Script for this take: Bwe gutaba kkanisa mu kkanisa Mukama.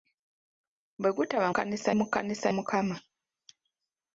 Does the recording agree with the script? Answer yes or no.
yes